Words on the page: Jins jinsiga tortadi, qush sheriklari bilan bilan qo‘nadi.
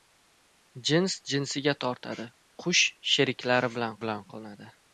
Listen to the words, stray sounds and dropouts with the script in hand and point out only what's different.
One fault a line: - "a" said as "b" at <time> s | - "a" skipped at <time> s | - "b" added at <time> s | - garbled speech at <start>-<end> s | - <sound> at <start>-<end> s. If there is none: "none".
none